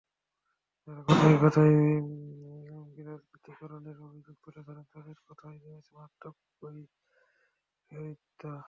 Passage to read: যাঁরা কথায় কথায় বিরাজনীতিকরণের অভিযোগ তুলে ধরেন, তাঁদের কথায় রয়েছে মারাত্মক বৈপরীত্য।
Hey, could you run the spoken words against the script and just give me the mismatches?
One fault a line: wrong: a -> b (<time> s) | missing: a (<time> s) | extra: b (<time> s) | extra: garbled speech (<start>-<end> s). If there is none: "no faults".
no faults